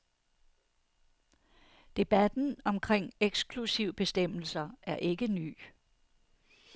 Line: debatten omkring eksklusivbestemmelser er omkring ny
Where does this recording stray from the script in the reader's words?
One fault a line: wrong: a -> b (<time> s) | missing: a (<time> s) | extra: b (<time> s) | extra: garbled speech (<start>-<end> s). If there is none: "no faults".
wrong: omkring -> ikke (5.0 s)